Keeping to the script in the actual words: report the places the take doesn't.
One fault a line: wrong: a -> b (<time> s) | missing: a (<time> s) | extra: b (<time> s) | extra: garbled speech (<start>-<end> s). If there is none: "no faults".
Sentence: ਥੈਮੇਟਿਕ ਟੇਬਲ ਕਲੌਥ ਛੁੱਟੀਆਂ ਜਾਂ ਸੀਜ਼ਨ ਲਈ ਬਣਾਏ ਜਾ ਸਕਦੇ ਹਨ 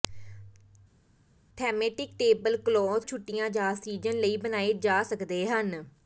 no faults